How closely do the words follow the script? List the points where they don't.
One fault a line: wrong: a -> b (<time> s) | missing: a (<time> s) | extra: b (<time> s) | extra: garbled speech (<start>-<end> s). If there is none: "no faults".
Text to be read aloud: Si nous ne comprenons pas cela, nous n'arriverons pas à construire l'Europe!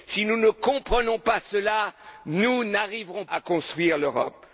missing: pas (3.2 s)